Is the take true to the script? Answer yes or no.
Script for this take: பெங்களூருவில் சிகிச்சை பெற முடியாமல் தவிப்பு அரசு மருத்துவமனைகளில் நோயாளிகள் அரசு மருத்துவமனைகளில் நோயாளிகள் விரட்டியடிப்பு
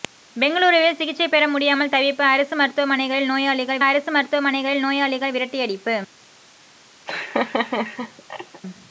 yes